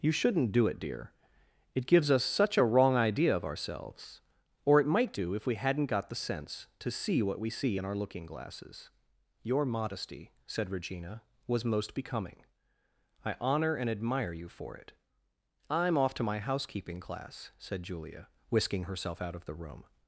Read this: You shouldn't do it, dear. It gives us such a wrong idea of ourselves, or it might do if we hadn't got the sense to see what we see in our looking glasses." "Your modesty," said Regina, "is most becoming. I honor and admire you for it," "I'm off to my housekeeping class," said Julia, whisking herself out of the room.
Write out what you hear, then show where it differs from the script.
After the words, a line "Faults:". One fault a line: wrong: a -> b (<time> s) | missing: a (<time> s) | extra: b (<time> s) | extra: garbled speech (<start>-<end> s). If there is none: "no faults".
You shouldn't do it, dear. It gives us such a wrong idea of ourselves, or it might do if we hadn't got the sense to see what we see in our looking glasses." "Your modesty," said Regina, "was most becoming. I honor and admire you for it," "I'm off to my housekeeping class," said Julia, whisking herself out of the room.
Faults:
wrong: is -> was (11.5 s)